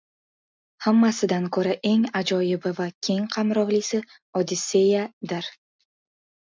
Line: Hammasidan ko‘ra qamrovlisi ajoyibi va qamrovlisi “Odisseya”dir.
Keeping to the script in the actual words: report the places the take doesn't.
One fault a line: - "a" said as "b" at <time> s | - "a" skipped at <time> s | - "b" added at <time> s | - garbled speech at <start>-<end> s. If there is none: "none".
- "qamrovlisi" said as "eng" at 1.9 s
- "keng" added at 3.1 s